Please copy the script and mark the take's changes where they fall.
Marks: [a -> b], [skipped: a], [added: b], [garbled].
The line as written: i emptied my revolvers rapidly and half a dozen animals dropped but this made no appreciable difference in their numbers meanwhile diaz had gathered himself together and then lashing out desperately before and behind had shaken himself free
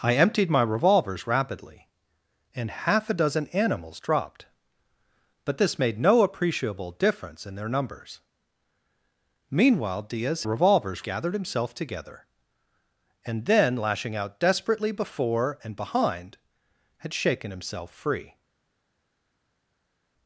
i emptied my revolvers rapidly and half a dozen animals dropped but this made no appreciable difference in their numbers meanwhile diaz [had -> revolvers] gathered himself together and then lashing out desperately before and behind had shaken himself free